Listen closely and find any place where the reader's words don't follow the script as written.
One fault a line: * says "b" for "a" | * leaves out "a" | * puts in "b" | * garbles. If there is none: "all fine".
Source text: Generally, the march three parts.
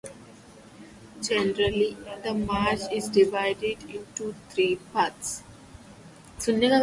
* puts in "is divided into"